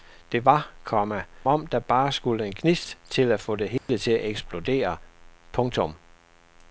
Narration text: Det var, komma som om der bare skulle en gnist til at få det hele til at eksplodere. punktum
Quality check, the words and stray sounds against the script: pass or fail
fail